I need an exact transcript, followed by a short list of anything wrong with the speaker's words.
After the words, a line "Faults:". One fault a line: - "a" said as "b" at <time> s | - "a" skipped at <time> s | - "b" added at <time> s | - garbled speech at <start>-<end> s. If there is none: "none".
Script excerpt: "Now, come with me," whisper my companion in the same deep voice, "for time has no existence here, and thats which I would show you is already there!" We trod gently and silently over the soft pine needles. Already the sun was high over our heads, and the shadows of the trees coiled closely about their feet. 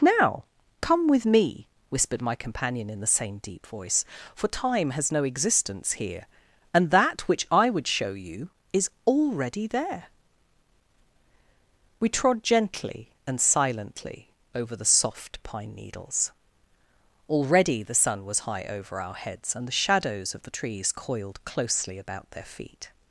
"Now, come with me," whispered my companion in the same deep voice, "for time has no existence here, and that which I would show you is already there!" We trod gently and silently over the soft pine needles. Already the sun was high over our heads, and the shadows of the trees coiled closely about their feet.
Faults:
- "whisper" said as "whispered" at 1.9 s
- "thats" said as "that" at 6.9 s